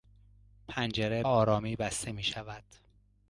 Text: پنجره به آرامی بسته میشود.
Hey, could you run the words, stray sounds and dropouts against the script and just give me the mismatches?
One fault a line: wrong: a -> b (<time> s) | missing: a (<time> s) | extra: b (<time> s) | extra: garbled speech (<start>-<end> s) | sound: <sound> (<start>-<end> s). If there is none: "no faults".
missing: به (1.2 s)